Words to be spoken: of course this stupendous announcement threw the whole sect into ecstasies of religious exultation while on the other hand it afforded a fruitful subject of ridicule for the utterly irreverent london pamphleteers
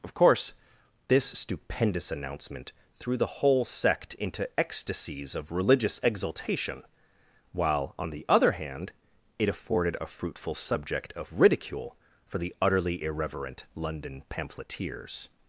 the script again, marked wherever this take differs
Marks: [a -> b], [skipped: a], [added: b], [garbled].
of course this stupendous announcement threw the whole sect into ecstasies of religious exultation while on the other hand it afforded a fruitful subject of ridicule for the utterly irreverent london pamphleteers